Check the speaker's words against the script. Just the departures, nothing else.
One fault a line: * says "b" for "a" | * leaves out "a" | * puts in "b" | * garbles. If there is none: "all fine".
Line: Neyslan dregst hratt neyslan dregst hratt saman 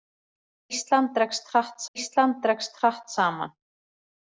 all fine